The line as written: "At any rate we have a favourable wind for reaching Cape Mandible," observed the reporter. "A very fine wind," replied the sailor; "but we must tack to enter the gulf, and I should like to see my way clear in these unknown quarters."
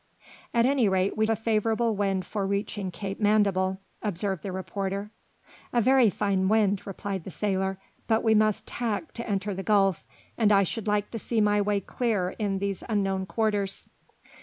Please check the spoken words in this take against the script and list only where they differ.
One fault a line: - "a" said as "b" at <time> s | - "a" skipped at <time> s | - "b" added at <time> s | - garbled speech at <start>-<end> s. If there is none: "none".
- "have" skipped at 1.3 s